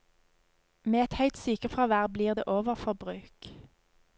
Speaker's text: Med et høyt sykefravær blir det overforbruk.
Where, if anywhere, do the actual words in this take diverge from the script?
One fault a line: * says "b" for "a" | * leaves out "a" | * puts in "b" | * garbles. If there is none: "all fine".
all fine